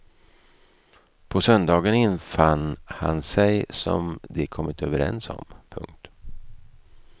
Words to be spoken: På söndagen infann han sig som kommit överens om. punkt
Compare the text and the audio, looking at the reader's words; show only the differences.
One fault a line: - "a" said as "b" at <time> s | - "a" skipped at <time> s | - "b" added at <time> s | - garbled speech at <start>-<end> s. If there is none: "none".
- "de" added at 4.2 s